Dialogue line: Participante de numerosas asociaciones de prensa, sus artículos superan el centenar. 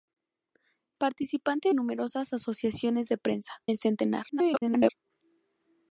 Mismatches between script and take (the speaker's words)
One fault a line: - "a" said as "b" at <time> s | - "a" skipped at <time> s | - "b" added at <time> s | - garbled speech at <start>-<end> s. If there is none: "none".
- "de" skipped at 1.7 s
- "sus artículos superan" skipped at 3.6 s
- garbled speech at 4.3-4.9 s